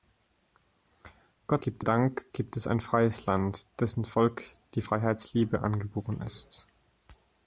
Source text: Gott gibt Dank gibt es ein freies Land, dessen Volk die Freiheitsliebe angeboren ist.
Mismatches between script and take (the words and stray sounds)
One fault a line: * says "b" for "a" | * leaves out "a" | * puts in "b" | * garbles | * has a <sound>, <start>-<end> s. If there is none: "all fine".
all fine